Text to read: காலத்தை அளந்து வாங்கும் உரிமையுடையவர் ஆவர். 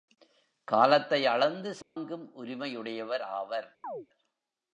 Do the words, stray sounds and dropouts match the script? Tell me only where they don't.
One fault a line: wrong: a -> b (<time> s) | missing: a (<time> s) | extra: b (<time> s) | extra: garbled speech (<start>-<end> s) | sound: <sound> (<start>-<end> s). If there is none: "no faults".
sound: dropout (1.8-2.0 s)
sound: chirp (3.8-4.1 s)